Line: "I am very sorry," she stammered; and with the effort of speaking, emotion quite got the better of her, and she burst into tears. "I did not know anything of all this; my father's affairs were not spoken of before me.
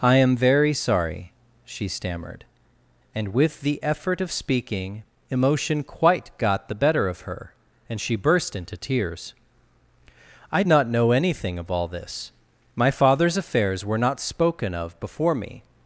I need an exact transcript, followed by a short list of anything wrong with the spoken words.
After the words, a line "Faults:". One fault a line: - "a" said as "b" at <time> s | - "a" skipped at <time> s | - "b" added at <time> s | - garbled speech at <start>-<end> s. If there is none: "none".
"I am very sorry," she stammered; and with the effort of speaking, emotion quite got the better of her, and she burst into tears. "I not know anything of all this; my father's affairs were not spoken of before me.
Faults:
- "did" skipped at 10.6 s